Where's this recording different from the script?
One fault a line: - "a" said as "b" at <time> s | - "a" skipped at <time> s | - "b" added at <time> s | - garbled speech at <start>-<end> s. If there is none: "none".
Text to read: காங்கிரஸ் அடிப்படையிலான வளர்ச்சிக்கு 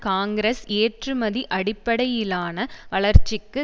- "ஏற்றுமதி" added at 0.8 s